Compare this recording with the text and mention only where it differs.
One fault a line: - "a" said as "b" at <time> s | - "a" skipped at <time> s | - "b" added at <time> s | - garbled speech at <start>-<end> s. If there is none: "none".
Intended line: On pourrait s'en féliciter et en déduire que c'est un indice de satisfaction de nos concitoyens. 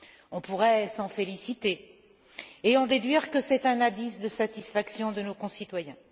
none